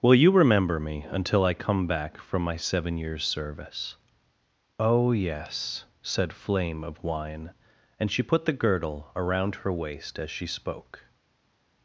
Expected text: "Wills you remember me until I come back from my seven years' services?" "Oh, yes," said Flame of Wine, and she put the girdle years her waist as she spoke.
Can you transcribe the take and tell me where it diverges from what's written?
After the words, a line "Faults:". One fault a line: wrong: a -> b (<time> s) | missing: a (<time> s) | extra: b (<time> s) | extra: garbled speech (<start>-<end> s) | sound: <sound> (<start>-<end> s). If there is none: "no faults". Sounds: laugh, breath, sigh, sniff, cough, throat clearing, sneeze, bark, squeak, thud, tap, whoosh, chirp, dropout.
"Will you remember me until I come back from my seven years' service?" "Oh, yes," said Flame of Wine, and she put the girdle around her waist as she spoke.
Faults:
wrong: Wills -> Will (0.0 s)
wrong: services -> service (3.2 s)
wrong: years -> around (9.1 s)